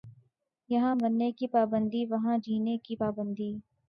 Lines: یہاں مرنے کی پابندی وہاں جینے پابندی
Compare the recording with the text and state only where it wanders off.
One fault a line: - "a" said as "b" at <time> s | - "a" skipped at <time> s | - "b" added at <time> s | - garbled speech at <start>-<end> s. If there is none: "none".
- "کی" added at 2.8 s